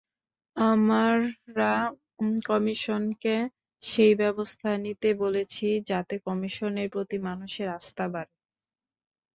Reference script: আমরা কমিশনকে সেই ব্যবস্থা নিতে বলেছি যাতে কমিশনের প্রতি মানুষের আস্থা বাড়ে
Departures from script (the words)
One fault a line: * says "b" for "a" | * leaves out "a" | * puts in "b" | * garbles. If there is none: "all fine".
all fine